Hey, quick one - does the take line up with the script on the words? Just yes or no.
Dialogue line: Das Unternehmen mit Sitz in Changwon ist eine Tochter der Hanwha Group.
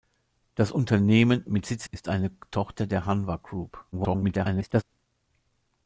no